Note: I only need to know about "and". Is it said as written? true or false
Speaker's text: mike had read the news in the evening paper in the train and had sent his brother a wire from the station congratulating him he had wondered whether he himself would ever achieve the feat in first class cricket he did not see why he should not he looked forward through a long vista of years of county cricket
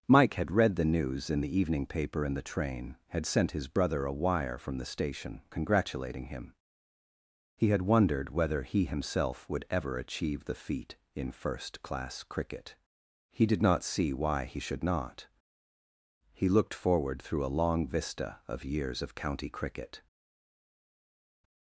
false